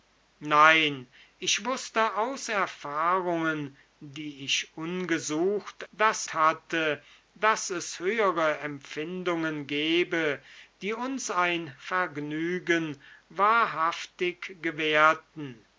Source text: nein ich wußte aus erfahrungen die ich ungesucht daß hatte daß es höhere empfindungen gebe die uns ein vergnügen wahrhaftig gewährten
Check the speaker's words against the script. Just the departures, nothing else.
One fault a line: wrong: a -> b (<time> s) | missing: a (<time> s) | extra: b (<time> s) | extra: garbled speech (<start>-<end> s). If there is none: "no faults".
no faults